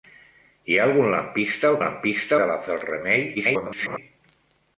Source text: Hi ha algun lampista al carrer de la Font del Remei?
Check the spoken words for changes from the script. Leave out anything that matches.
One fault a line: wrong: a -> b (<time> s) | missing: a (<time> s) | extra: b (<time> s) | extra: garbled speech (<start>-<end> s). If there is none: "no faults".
wrong: carrer -> lampista (1.8 s)
missing: Font (2.6 s)
extra: garbled speech (3.3-4.0 s)